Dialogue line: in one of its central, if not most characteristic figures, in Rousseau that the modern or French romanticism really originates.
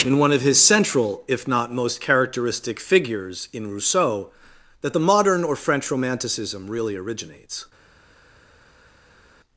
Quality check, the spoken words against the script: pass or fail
fail